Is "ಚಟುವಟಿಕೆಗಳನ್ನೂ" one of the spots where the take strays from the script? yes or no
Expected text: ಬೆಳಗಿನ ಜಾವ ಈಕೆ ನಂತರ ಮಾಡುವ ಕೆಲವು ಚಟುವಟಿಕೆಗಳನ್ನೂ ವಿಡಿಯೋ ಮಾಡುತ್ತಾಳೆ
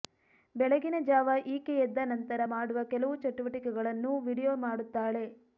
no